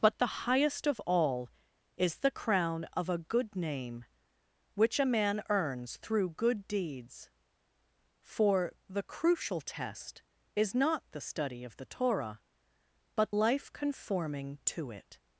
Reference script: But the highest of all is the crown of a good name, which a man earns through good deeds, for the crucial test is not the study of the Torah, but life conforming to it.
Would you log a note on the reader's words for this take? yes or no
no